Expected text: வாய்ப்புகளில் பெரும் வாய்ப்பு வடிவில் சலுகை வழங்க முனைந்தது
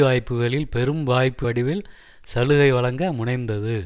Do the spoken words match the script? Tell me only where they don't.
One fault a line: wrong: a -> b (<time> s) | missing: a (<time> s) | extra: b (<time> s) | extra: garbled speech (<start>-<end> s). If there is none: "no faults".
no faults